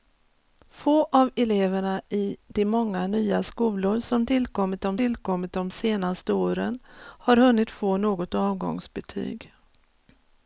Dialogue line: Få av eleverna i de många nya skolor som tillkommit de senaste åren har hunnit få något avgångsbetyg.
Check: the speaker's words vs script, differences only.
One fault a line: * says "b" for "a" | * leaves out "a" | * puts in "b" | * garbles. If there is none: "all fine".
* puts in "tillkommit de"